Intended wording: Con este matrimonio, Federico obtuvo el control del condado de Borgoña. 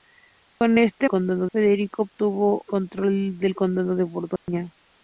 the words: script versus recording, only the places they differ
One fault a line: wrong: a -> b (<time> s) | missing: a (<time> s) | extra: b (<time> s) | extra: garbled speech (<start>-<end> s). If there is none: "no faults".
wrong: matrimonio -> condado (1.1 s)
missing: el (2.6 s)